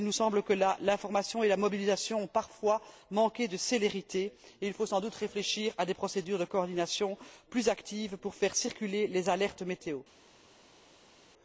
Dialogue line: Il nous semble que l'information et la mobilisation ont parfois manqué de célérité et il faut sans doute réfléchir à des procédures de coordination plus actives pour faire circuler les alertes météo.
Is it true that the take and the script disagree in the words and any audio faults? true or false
false